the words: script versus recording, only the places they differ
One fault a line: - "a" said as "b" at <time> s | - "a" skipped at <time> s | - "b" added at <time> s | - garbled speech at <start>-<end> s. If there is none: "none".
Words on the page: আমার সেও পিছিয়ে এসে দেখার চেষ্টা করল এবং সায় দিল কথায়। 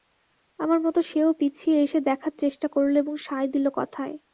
- "মতো" added at 0.8 s